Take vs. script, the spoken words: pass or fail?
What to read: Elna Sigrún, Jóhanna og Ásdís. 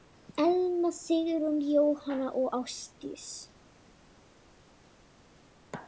pass